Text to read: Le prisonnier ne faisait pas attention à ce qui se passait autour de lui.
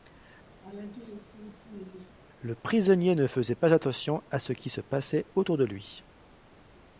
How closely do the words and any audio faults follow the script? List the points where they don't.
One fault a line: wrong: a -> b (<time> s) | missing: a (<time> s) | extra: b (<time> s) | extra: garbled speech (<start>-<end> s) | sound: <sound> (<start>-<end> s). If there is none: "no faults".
sound: laugh (0.6-2.1 s)